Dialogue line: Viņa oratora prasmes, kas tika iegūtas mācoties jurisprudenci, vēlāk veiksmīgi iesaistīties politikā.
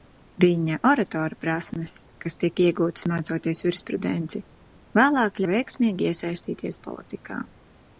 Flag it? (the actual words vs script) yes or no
no